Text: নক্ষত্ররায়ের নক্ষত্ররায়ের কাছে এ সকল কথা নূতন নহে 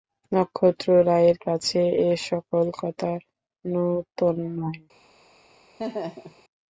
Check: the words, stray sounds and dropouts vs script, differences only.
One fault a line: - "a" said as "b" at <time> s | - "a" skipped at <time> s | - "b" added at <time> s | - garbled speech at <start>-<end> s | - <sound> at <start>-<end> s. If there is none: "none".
- "নক্ষত্ররায়ের" skipped at 1.4 s
- laugh at 5.8-6.4 s